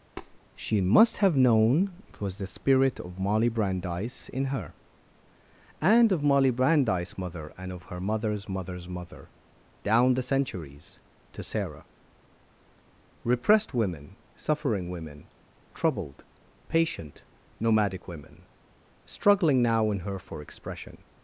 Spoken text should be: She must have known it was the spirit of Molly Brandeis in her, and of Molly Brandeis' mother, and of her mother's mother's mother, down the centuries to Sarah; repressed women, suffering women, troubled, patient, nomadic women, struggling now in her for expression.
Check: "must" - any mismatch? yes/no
no